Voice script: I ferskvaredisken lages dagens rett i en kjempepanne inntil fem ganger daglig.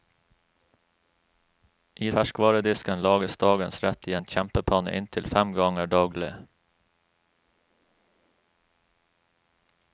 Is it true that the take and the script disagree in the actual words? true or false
false